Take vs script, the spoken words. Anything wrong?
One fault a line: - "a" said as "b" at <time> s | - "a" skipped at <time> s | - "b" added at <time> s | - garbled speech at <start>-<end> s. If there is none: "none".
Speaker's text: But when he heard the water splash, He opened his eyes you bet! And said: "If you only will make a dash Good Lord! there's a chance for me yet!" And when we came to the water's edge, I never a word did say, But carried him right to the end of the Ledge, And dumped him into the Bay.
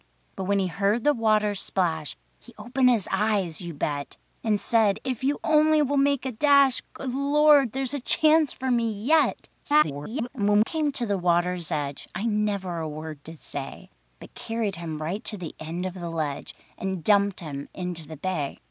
- garbled speech at 9.6-10.3 s
- "we" skipped at 10.6 s